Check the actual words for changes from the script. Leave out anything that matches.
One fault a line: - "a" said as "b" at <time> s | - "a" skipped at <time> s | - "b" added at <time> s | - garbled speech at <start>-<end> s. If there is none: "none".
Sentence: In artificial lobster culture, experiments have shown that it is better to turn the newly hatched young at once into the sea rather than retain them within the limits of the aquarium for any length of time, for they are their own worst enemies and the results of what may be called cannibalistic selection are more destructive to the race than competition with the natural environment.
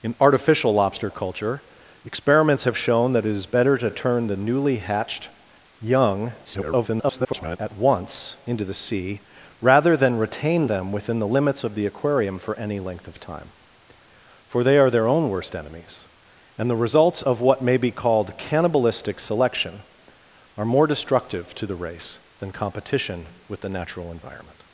- garbled speech at 6.4-7.6 s